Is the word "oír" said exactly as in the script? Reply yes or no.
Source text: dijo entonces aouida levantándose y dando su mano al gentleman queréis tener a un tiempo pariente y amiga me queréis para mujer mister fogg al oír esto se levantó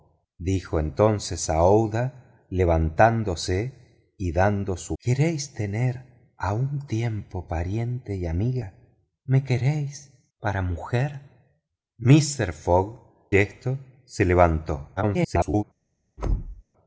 no